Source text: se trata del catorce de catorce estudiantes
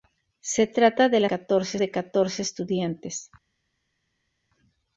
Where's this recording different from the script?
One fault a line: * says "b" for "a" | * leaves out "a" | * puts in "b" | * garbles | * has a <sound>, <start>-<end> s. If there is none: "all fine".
all fine